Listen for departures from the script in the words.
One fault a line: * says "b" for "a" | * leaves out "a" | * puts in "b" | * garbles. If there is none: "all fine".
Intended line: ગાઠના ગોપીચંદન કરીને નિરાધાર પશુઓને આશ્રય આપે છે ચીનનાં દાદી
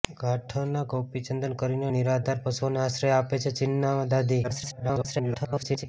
* garbles